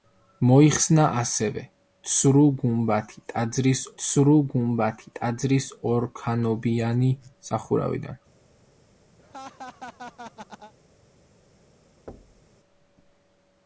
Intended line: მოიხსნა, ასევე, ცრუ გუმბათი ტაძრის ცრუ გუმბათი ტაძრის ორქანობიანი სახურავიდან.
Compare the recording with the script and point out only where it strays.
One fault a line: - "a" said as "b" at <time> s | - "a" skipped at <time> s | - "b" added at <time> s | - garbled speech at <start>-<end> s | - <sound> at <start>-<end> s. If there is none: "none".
- laugh at 9.2-10.7 s
- thud at 12.1-12.5 s